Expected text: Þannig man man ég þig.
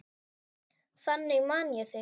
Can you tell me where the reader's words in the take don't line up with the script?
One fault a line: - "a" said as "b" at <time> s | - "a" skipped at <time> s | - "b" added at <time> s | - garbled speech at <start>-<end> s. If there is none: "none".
- "man" skipped at 1.7 s